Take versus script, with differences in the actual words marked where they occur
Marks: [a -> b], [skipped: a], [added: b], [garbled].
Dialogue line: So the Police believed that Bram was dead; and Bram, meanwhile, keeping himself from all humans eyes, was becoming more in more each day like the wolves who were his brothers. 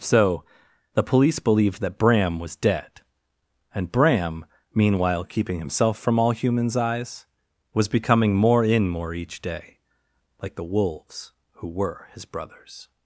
So the Police believed that Bram was dead; and Bram, meanwhile, keeping himself from all humans eyes, was becoming more in more each day like the wolves who were his brothers.